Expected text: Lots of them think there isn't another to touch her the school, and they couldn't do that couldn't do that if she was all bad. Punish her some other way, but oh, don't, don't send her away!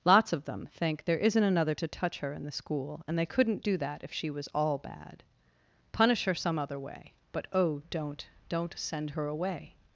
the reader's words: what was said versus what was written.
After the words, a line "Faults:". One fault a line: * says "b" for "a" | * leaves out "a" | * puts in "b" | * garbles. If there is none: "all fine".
Lots of them think there isn't another to touch her in the school, and they couldn't do that if she was all bad. Punish her some other way, but oh, don't, don't send her away!
Faults:
* puts in "in"
* leaves out "couldn't do that"